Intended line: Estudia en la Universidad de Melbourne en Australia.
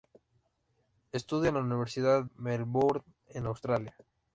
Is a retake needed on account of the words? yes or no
yes